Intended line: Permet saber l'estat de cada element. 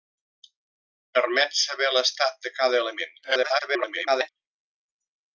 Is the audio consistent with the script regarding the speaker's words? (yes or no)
no